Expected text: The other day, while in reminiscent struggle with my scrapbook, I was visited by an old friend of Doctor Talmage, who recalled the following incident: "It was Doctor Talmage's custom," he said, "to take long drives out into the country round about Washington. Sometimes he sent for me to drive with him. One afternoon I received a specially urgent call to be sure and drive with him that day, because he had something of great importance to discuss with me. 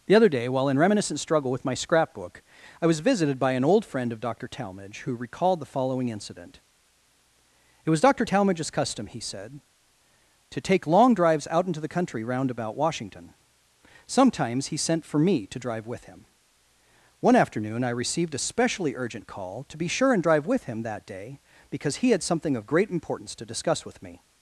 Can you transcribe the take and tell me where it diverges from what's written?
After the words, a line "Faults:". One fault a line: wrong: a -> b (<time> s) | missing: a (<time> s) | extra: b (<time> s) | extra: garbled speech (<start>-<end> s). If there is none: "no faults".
The other day, while in reminiscent struggle with my scrapbook, I was visited by an old friend of Doctor Talmage, who recalled the following incident: "It was Doctor Talmage's custom," he said, "to take long drives out into the country round about Washington. Sometimes he sent for me to drive with him. One afternoon I received a specially urgent call to be sure and drive with him that day, because he had something of great importance to discuss with me.
Faults:
no faults